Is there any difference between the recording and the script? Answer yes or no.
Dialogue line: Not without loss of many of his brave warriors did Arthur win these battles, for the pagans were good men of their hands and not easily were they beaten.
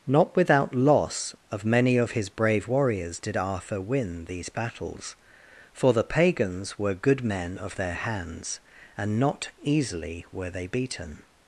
no